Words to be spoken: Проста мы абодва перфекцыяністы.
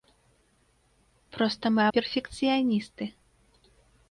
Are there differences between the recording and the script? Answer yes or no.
yes